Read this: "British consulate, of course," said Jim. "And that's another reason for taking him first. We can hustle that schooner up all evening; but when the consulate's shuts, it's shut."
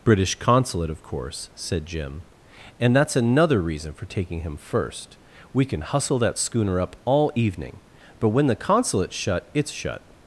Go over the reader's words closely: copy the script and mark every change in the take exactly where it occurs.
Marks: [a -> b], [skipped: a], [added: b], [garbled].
"British consulate, of course," said Jim. "And that's another reason for taking him first. We can hustle that schooner up all evening; but when the consulate's [shuts, -> shut] it's shut."